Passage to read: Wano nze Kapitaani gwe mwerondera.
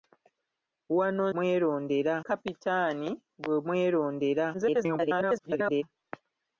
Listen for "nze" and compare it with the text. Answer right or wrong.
wrong